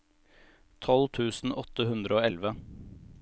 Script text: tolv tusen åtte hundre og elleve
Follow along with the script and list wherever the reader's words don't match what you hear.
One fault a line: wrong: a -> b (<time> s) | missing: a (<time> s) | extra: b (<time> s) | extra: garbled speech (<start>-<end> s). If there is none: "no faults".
no faults